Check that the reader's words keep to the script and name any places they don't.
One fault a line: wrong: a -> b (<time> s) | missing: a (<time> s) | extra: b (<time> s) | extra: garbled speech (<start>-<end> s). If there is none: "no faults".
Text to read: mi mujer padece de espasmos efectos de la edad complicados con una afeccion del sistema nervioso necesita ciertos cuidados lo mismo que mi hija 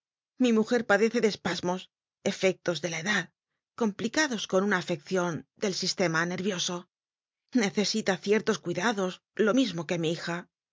no faults